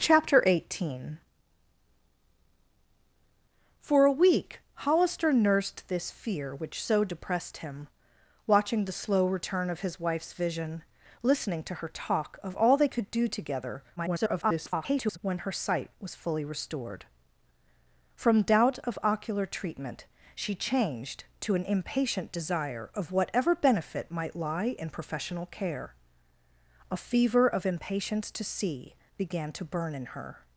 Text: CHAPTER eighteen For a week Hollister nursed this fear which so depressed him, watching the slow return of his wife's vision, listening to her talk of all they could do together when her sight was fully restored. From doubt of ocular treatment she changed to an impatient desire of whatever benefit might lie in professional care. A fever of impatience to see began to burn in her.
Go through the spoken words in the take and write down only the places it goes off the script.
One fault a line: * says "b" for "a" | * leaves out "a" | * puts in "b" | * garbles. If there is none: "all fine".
* garbles